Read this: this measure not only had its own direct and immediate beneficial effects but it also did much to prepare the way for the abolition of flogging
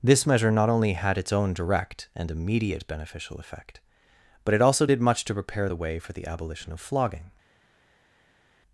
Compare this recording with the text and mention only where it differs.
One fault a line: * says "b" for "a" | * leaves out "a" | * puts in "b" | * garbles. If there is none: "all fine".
* says "effect" for "effects"